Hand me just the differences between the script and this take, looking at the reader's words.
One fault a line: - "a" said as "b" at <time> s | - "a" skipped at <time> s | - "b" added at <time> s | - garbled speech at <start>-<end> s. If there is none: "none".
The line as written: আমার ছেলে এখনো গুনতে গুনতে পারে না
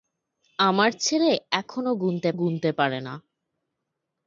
none